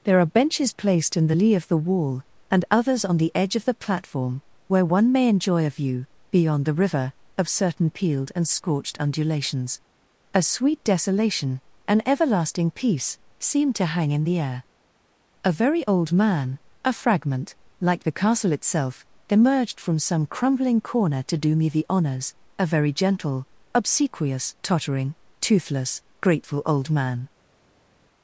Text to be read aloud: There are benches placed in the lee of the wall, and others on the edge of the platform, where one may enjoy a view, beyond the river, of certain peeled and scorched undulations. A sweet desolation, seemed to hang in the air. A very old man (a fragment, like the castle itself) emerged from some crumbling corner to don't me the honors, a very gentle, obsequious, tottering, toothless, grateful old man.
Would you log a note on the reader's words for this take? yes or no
yes